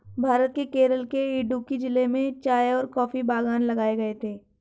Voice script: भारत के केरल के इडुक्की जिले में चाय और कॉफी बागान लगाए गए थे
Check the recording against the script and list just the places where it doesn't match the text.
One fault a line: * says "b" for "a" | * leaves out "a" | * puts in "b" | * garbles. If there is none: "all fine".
all fine